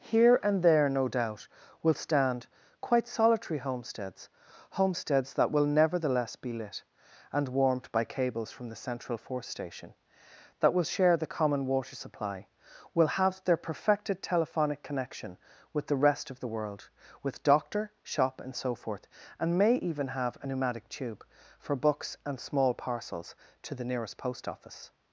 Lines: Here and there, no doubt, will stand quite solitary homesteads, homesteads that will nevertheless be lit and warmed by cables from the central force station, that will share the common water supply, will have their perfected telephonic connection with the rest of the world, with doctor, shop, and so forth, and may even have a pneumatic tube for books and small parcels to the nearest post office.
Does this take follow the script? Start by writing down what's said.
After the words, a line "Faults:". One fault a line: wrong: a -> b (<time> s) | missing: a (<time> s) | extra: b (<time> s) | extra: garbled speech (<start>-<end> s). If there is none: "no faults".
Here and there, no doubt, will stand quite solitary homesteads, homesteads that will nevertheless be lit and warmed by cables from the central force station, that will share the common water supply, will have their perfected telephonic connection with the rest of the world, with doctor, shop, and so forth, and may even have a pneumatic tube for books and small parcels to the nearest post office.
Faults:
no faults